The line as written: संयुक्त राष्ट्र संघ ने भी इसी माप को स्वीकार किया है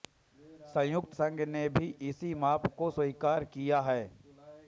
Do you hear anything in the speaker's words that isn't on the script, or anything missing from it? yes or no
yes